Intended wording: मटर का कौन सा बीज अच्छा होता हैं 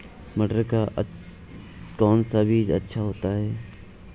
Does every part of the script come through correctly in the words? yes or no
yes